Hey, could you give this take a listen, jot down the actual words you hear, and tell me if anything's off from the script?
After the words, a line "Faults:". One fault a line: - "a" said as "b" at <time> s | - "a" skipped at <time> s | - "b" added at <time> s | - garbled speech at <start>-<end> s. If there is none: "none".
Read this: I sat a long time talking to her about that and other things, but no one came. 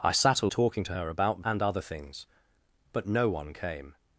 I sat a talking to her about and other things, but no one came.
Faults:
- "long time" skipped at 0.5 s
- "that" skipped at 1.4 s